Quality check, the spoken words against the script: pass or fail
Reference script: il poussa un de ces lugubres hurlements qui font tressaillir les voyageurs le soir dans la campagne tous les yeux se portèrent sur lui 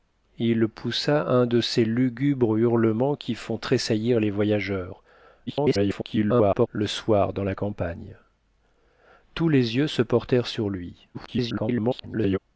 fail